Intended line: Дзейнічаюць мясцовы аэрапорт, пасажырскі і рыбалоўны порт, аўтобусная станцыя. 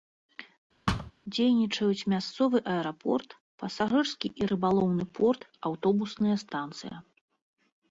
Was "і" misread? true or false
false